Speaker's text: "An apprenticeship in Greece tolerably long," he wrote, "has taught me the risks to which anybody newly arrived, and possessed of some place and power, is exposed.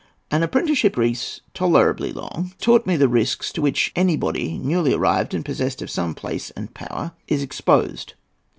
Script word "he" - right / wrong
wrong